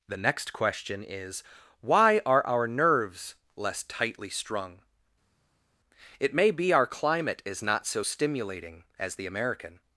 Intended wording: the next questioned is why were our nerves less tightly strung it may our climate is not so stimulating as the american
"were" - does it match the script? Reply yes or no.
no